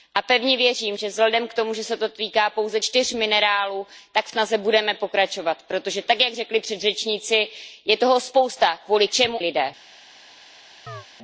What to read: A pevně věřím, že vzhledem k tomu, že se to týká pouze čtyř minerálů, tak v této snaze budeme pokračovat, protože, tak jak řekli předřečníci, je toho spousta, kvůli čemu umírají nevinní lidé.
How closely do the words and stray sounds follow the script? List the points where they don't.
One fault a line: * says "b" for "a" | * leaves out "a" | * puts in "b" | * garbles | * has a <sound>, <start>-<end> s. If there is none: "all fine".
* leaves out "této"
* leaves out "umírají nevinní"
* has a chirp, 10.9-11.1 s